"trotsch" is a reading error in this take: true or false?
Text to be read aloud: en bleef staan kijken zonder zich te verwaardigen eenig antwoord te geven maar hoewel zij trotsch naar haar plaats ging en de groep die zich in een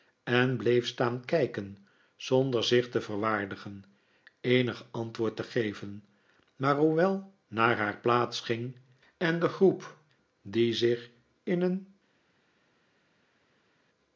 true